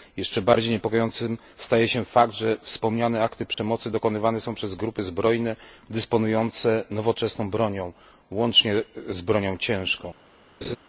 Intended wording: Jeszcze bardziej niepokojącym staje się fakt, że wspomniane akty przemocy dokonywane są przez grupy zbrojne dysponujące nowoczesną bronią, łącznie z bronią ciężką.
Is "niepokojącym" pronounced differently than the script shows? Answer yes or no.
no